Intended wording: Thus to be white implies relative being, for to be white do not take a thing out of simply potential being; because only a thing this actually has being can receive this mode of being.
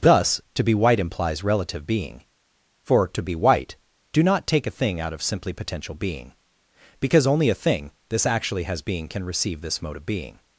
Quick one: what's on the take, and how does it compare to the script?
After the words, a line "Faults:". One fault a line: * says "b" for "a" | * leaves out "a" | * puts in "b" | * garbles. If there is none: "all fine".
Thus to be white implies relative being, for to be white do not take a thing out of simply potential being; because only a thing this actually has being can receive this mode of being.
Faults:
all fine